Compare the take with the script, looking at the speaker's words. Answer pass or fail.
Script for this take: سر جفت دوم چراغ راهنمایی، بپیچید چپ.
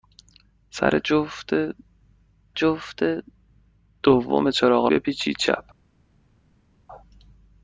fail